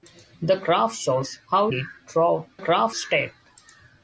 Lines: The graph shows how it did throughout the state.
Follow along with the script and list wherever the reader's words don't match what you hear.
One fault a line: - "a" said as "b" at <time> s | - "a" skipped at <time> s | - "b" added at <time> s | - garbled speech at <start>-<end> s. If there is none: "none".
- "it" skipped at 1.7 s
- "the" said as "graph" at 2.6 s